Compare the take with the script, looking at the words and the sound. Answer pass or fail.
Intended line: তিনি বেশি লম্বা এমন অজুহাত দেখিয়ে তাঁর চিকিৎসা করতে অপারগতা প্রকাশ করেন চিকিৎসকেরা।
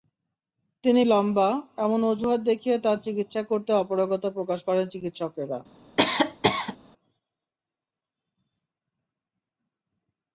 fail